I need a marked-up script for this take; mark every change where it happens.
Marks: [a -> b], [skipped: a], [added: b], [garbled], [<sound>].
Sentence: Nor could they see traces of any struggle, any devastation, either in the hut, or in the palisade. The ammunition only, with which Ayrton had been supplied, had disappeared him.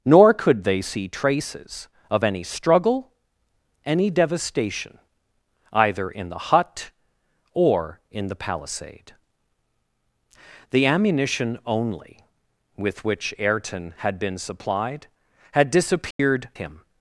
Nor could they see traces of any struggle, any devastation, either in the hut, or in the palisade. The ammunition only, with which Ayrton had been supplied, had disappeared [dropout] him.